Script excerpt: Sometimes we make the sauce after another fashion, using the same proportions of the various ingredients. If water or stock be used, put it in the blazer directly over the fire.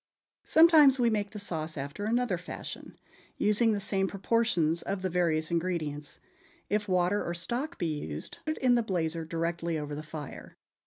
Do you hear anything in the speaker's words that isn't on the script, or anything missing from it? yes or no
yes